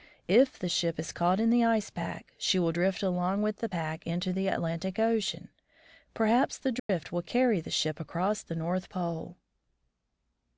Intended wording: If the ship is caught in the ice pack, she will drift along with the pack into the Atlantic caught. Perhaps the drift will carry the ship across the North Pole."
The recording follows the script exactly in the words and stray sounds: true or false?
false